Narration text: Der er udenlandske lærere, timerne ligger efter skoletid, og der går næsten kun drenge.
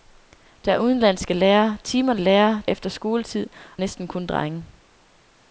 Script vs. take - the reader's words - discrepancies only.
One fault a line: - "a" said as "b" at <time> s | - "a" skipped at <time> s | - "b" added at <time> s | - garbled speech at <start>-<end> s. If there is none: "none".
- "ligger" said as "lærere" at 2.2 s
- "og der går" skipped at 3.5 s